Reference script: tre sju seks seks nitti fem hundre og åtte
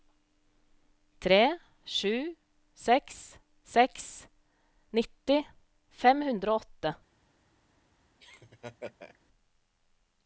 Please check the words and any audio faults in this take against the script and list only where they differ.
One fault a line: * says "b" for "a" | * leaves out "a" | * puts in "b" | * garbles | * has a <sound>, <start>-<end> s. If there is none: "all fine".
* has a laugh, 8.2-9.2 s